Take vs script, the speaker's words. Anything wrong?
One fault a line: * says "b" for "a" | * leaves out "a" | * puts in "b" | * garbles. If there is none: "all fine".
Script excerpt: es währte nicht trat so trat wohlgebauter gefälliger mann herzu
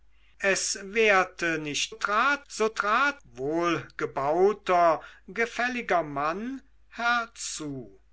all fine